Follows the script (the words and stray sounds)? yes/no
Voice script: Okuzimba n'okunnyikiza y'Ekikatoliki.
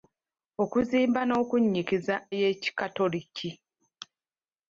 yes